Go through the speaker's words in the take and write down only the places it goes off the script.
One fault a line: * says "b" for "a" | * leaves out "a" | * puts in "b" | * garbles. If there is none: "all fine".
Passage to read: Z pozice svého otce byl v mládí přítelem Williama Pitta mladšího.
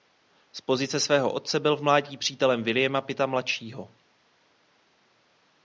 all fine